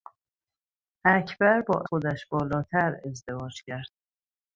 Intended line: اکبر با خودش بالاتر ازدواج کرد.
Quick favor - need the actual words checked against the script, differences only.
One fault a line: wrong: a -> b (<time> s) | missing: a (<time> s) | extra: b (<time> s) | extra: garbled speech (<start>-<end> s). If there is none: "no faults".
no faults